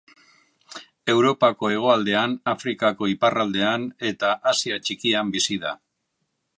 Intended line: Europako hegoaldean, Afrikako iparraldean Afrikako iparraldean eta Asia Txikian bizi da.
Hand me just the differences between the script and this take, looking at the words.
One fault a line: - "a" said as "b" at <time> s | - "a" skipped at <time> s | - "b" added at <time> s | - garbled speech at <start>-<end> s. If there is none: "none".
- "Afrikako iparraldean" skipped at 3.9 s